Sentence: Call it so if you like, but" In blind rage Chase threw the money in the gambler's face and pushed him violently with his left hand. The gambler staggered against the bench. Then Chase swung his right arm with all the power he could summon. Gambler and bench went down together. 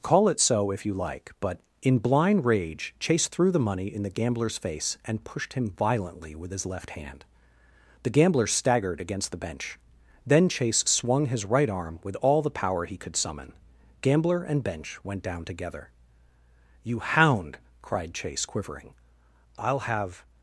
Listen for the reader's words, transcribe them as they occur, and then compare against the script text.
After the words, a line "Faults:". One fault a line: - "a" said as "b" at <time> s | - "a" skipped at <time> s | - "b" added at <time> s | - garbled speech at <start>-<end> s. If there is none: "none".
Call it so if you like, but" In blind rage Chase threw the money in the gambler's face and pushed him violently with his left hand. The gambler staggered against the bench. Then Chase swung his right arm with all the power he could summon. Gambler and bench went down together. "You hound!" cried Chase, quivering. "I'll have
Faults:
- "You hound cried Chase quivering I'll have" added at 16.8 s